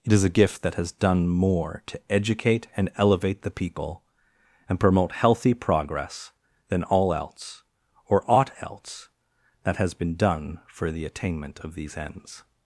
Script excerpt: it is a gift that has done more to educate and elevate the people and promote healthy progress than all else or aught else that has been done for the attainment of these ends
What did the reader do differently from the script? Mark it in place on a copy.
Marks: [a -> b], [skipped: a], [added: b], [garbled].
it is a gift that has done more to educate and elevate the people and promote healthy progress than all else or aught else that has been done for the attainment of these ends